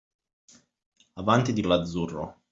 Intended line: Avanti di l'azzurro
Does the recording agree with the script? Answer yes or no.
yes